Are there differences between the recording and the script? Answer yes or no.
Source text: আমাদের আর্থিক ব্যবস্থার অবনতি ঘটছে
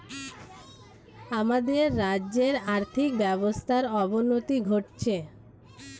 yes